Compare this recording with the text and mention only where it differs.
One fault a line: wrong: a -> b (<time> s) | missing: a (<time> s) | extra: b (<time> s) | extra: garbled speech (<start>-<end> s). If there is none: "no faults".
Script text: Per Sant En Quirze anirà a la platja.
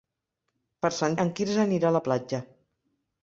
no faults